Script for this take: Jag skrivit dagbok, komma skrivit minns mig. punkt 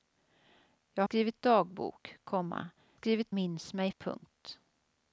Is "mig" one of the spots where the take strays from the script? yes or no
no